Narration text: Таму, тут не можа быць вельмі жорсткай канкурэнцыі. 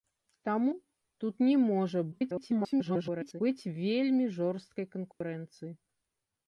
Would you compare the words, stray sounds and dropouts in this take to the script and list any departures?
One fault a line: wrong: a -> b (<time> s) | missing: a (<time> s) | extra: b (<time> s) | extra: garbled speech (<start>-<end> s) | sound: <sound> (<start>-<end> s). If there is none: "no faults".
extra: garbled speech (2.1-3.4 s)
sound: dropout (5.1-5.2 s)